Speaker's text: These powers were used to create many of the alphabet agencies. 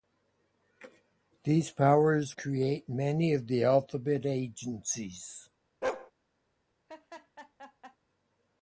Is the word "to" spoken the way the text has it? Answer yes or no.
no